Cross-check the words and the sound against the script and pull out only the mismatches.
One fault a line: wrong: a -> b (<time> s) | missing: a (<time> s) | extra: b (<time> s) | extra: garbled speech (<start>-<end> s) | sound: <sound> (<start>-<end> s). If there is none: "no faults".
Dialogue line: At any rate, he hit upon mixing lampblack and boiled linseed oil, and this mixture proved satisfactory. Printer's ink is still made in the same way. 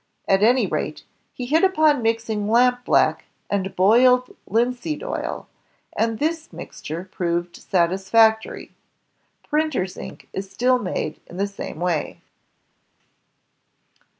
no faults